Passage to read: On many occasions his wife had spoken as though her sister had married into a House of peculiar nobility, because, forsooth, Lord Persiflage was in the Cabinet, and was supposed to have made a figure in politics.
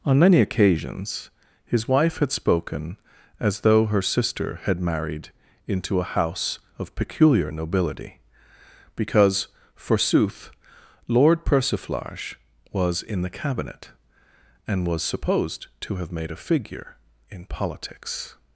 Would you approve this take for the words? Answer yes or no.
yes